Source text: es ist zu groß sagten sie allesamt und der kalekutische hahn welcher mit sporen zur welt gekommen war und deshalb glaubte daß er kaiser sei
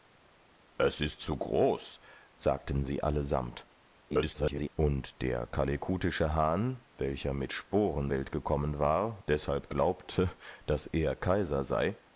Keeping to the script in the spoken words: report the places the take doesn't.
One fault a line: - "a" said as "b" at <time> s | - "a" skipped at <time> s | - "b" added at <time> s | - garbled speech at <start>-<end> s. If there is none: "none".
- garbled speech at 4.1-4.7 s
- "zur" skipped at 8.1 s
- "und" skipped at 9.3 s